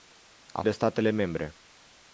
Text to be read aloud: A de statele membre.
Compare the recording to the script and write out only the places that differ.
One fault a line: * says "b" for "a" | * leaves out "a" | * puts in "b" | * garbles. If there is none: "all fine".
all fine